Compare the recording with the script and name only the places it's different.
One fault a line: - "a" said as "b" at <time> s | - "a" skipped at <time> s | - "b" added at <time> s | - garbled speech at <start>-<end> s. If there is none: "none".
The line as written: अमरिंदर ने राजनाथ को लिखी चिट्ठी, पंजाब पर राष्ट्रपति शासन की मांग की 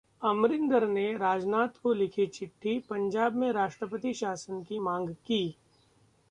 - "पर" said as "में" at 3.4 s